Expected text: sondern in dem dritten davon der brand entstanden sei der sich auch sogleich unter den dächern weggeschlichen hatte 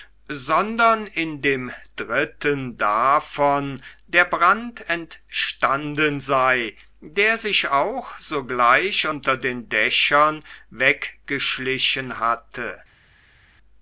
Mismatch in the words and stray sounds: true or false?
false